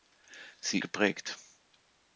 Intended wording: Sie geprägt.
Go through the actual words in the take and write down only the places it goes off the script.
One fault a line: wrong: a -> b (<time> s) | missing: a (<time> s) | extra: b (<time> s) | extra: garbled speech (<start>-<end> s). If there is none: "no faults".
no faults